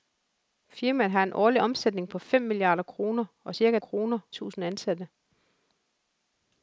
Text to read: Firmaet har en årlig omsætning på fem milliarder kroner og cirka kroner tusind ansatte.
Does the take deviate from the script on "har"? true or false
false